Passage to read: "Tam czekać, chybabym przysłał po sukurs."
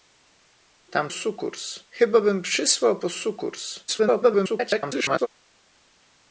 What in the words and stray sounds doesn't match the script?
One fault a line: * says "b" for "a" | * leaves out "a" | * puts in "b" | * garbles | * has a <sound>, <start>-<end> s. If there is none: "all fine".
* says "sukurs" for "czekać"
* garbles